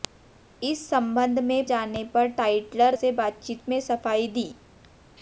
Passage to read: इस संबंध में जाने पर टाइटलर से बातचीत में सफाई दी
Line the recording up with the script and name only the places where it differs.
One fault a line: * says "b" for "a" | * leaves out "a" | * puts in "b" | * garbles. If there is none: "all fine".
all fine